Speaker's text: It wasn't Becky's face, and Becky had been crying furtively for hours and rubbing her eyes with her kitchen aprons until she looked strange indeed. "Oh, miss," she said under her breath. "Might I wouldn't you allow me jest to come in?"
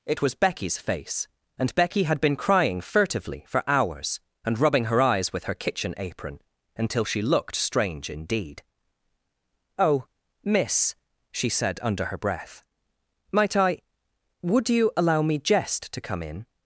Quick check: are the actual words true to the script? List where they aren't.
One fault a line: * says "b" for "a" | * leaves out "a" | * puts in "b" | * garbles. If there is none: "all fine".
* says "was" for "wasn't"
* says "apron" for "aprons"
* says "would" for "wouldn't"